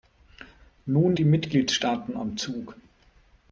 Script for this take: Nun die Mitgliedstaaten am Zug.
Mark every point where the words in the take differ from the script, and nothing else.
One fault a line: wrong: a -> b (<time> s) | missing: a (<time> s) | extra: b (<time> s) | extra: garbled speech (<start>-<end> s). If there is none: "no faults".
no faults